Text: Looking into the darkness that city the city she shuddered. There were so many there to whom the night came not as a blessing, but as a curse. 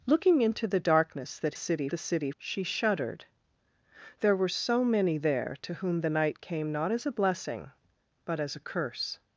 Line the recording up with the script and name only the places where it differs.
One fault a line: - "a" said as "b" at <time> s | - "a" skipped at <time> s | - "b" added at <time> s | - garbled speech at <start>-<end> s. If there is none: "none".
none